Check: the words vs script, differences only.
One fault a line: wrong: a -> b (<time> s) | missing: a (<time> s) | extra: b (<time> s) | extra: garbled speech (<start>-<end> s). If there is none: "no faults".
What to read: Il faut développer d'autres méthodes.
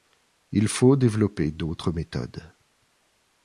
no faults